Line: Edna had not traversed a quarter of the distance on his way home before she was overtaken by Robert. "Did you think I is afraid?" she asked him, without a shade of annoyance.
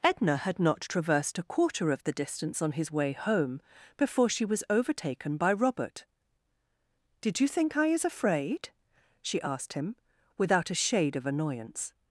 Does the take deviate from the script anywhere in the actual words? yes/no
no